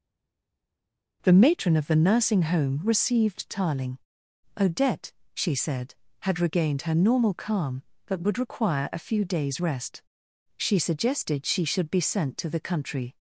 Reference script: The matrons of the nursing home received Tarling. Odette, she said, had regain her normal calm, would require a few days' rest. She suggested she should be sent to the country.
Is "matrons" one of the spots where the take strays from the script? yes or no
yes